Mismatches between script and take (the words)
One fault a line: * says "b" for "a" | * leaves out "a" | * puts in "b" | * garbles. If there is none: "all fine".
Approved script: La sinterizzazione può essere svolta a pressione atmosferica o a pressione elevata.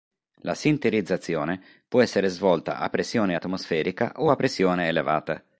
all fine